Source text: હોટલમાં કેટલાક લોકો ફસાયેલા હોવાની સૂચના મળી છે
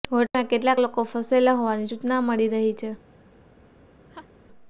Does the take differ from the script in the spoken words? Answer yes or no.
yes